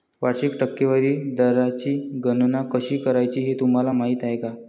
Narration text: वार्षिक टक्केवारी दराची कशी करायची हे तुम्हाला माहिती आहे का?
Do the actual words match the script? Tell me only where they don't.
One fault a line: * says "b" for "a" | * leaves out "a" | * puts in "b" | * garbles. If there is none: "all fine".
* puts in "गणना"